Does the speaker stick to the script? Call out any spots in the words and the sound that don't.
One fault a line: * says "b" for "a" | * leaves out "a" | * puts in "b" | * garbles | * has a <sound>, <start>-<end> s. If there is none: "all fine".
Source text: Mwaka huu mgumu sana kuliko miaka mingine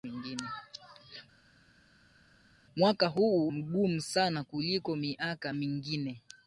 all fine